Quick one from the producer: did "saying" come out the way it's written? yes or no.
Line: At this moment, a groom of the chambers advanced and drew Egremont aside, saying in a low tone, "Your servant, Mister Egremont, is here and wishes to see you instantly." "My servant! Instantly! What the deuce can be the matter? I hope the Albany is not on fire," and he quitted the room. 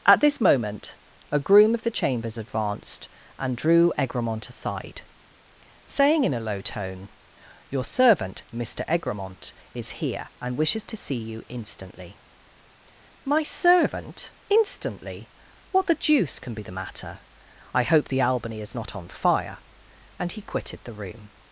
yes